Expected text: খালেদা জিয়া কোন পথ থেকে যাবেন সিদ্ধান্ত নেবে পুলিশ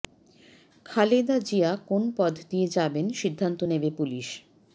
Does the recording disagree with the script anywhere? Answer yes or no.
yes